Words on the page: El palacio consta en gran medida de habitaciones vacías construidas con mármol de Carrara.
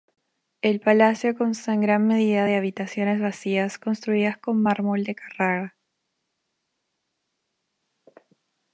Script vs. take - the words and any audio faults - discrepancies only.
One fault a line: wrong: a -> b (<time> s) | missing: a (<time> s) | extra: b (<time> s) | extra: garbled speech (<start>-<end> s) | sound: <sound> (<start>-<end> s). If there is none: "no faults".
no faults